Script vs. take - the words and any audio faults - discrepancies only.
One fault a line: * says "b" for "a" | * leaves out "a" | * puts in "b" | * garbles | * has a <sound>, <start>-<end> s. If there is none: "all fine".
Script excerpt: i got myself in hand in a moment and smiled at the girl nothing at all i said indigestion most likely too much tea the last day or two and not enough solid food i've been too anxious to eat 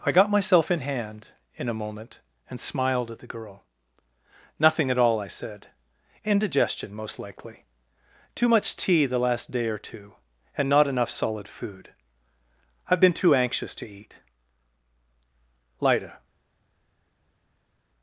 * puts in "lida"